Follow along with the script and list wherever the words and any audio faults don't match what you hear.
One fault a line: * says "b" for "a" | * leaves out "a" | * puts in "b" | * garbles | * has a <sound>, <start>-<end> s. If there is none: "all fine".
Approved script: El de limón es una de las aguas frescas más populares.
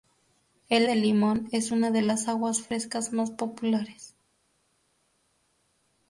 all fine